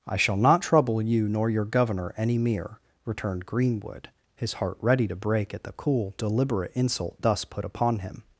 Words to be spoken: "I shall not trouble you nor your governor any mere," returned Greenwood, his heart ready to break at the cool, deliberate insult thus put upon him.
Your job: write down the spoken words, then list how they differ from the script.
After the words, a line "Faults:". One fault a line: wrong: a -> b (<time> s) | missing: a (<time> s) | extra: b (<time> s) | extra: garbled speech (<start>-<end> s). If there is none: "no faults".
"I shall not trouble you nor your governor any mere," returned Greenwood, his heart ready to break at the cool, deliberate insult thus put upon him.
Faults:
no faults